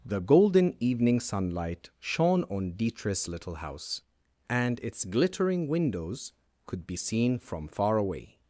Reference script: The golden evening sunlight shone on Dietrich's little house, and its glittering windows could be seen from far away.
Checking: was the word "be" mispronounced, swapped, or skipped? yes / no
no